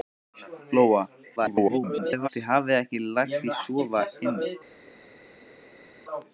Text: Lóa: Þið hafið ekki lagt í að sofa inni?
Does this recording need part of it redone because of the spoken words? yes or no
yes